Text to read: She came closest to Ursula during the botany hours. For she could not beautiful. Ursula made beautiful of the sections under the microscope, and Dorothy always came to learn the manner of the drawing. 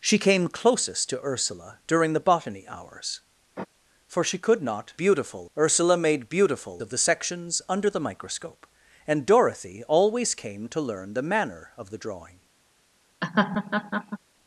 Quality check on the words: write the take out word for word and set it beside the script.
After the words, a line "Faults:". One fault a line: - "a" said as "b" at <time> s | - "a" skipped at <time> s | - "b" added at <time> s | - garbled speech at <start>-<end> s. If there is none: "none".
She came closest to Ursula during the botany hours. For she could not beautiful. Ursula made beautiful of the sections under the microscope, and Dorothy always came to learn the manner of the drawing.
Faults:
none